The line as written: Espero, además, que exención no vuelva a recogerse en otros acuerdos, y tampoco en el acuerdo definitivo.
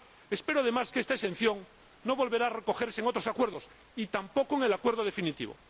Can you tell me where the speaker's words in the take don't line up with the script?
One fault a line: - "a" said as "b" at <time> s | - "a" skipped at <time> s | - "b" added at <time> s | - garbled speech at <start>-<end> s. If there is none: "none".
- "esta" added at 1.0 s